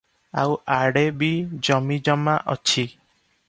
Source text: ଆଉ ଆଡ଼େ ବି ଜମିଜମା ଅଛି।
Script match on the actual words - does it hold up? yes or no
yes